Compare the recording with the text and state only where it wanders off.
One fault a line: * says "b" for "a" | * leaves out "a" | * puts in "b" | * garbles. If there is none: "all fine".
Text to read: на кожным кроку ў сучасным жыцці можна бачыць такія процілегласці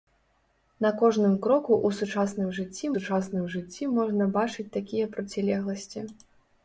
* puts in "сучасным жыцці"